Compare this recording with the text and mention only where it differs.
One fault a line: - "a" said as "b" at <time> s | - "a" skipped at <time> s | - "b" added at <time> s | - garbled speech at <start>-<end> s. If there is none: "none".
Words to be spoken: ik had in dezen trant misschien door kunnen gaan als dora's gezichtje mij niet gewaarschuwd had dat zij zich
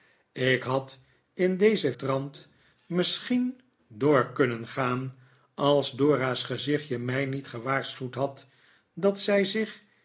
none